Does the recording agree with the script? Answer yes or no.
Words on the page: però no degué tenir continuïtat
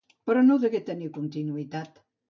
yes